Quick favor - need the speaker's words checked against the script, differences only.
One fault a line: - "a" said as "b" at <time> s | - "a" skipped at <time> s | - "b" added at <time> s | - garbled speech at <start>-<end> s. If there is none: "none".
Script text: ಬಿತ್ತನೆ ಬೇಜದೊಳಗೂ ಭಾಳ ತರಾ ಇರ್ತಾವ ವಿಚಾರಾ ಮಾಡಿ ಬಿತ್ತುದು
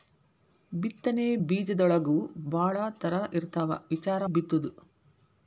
- "ಮಾಡಿ" skipped at 4.3 s